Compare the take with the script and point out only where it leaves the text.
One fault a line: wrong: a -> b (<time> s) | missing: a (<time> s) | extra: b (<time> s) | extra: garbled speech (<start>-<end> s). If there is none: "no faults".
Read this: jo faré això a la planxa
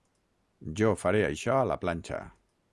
no faults